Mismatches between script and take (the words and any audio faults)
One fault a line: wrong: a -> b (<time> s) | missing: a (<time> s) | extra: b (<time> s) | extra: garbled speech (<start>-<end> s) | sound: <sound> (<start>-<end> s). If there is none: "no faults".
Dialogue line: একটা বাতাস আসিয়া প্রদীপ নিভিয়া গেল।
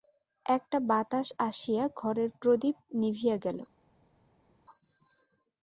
extra: ঘরের (2.0 s)